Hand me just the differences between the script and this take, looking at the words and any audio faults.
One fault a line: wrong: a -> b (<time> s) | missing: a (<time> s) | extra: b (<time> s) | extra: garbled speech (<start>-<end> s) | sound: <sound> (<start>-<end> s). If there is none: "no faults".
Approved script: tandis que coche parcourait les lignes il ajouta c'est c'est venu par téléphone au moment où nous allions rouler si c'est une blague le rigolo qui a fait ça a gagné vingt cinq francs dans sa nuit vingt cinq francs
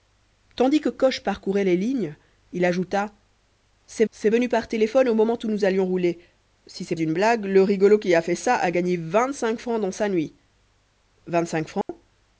sound: dropout (11.8-11.9 s)